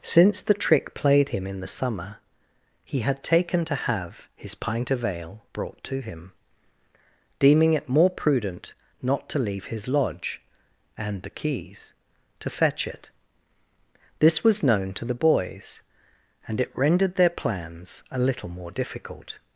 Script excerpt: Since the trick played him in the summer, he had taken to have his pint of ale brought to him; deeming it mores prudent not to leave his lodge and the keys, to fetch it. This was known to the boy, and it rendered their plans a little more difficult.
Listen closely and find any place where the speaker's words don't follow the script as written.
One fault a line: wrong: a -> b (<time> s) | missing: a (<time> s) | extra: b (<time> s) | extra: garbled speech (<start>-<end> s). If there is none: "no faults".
wrong: mores -> more (7.9 s)
wrong: boy -> boys (15.2 s)